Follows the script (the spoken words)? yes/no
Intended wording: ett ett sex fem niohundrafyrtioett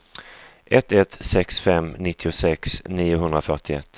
no